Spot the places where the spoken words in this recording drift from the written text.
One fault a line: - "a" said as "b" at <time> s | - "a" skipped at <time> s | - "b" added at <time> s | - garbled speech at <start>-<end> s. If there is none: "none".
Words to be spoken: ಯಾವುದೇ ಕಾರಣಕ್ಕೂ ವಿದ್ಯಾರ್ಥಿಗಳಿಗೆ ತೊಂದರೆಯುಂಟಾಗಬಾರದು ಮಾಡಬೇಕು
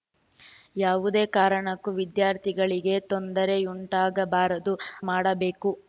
none